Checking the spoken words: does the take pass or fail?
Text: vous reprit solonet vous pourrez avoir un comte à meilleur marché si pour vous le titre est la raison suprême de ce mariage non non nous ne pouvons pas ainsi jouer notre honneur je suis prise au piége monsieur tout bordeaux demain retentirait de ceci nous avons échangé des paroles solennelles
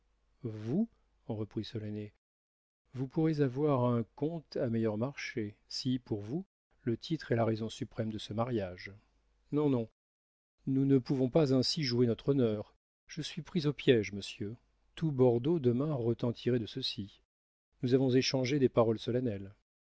pass